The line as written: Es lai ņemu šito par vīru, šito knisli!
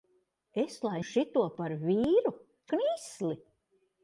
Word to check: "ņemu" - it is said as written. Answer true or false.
false